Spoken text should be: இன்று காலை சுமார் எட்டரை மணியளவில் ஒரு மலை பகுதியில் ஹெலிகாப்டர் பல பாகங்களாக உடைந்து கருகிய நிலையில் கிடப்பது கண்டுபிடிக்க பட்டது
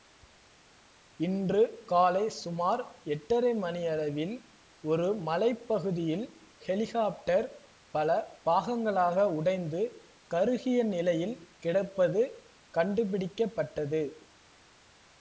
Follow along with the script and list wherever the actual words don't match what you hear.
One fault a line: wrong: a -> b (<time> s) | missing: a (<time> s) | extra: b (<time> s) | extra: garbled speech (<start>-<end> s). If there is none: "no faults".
no faults